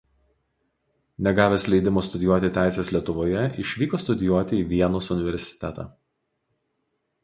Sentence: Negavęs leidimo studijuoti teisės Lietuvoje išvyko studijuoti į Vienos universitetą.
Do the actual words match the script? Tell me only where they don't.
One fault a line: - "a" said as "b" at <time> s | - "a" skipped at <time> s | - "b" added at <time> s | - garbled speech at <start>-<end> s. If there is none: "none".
none